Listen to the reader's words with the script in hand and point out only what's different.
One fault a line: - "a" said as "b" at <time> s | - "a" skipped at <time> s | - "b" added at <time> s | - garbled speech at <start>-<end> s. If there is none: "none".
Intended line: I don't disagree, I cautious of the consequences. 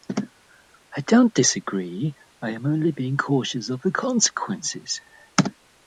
- "am only being" added at 2.5 s